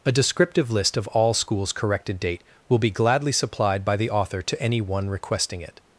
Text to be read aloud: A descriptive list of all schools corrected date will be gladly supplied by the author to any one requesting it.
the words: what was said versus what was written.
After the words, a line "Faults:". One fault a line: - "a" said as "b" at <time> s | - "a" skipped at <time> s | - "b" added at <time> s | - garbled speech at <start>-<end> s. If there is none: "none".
A descriptive list of all schools corrected date will be gladly supplied by the author to any one requesting it.
Faults:
none